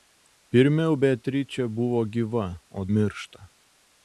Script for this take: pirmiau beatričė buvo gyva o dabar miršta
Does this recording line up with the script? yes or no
no